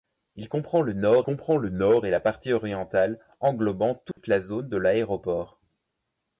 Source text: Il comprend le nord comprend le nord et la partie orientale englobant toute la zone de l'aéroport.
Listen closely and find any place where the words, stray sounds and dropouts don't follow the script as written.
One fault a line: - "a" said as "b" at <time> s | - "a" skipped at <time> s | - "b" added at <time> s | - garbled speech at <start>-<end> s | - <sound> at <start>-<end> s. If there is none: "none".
- dropout at 4.1-4.2 s